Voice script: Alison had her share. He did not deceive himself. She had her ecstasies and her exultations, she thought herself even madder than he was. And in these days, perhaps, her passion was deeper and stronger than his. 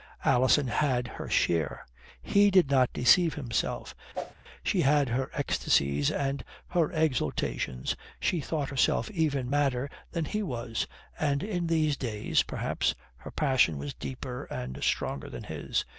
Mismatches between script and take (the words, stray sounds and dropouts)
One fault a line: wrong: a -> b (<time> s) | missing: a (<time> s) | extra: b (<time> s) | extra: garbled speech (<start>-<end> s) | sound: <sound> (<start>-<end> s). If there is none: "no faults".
sound: whoosh (4.1-4.3 s)